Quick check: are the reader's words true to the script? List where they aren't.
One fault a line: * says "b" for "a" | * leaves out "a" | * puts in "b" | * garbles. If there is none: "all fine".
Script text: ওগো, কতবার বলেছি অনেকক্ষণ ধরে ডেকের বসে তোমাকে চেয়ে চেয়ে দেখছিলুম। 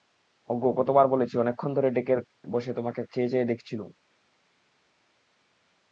all fine